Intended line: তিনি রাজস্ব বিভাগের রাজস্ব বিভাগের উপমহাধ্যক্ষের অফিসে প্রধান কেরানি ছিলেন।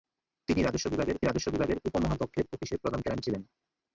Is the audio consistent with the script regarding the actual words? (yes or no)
yes